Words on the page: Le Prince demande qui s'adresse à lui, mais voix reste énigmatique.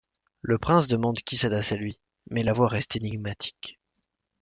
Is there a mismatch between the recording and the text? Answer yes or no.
yes